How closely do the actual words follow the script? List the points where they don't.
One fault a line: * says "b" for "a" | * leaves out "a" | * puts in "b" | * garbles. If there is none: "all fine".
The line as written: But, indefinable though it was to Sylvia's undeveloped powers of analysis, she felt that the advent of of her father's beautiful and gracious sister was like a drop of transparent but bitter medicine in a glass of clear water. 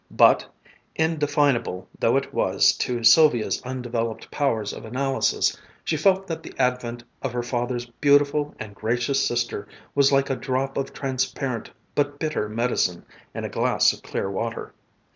* leaves out "of"